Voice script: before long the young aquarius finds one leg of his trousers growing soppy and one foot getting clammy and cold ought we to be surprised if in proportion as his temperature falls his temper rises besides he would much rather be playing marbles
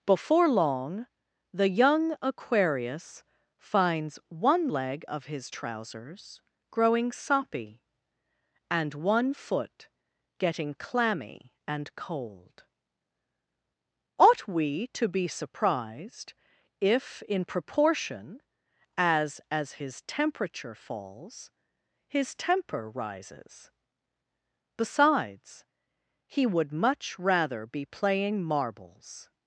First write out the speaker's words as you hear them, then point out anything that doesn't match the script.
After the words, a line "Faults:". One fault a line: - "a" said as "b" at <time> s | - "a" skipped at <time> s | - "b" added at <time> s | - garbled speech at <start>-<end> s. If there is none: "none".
before long the young aquarius finds one leg of his trousers growing soppy and one foot getting clammy and cold ought we to be surprised if in proportion as as his temperature falls his temper rises besides he would much rather be playing marbles
Faults:
- "as" added at 19.5 s